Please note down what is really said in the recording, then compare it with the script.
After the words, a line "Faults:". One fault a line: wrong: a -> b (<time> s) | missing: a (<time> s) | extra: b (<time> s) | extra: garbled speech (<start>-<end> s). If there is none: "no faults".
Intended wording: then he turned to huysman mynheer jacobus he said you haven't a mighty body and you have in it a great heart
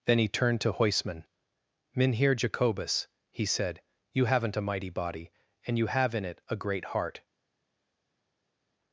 then he turned to huysman mynheer jacobus he said you haven't a mighty body and you have in it a great heart
Faults:
no faults